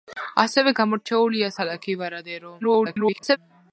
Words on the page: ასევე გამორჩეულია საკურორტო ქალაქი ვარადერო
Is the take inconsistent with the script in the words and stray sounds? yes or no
yes